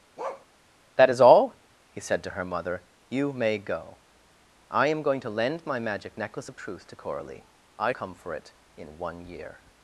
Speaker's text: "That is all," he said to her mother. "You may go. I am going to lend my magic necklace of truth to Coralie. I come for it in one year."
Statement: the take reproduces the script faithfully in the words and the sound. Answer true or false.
false